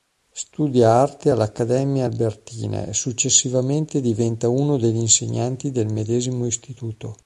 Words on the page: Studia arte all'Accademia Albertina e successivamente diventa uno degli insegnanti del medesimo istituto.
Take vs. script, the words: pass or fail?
pass